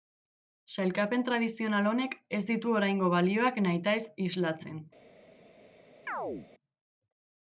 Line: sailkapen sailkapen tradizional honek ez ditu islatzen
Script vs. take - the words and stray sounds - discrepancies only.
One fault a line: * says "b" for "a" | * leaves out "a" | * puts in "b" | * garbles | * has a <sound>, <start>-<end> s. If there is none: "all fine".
* leaves out "sailkapen"
* puts in "oraingo balioak nahitaez"
* has a chirp, 6.1-6.5 s